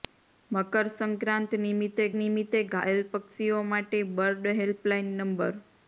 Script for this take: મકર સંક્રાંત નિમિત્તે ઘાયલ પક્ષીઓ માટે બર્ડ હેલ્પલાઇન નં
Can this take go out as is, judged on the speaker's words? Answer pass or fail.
fail